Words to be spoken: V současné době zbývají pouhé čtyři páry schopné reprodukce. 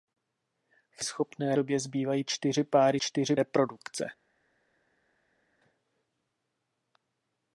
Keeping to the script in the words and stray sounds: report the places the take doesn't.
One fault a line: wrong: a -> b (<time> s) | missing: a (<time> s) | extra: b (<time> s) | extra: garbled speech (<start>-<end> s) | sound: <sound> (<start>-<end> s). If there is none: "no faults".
wrong: současné -> schopné (1.0 s)
missing: pouhé (2.2 s)
wrong: schopné -> čtyři (3.0 s)